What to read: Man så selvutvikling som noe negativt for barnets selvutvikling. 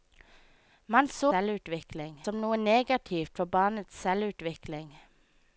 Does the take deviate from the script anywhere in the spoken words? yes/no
no